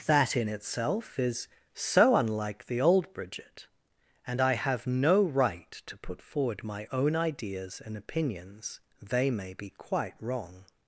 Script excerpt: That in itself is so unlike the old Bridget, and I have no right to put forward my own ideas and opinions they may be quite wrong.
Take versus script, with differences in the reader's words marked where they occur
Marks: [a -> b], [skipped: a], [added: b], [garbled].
That in itself is so unlike the old Bridget, and I have no right to put forward my own ideas and opinions they may be quite wrong.